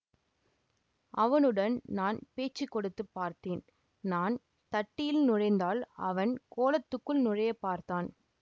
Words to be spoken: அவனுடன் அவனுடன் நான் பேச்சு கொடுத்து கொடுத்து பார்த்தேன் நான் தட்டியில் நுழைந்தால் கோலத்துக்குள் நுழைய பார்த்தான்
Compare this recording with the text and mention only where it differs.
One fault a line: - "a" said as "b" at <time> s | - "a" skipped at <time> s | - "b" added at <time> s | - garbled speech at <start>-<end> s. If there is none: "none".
- "அவனுடன்" skipped at 1.8 s
- "கொடுத்து" skipped at 3.0 s
- "அவன்" added at 6.1 s